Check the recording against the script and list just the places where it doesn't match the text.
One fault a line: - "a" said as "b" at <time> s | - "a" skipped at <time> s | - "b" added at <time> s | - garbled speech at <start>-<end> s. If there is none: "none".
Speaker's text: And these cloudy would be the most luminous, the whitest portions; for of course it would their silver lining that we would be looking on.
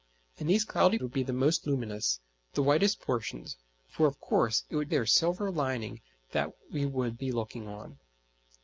none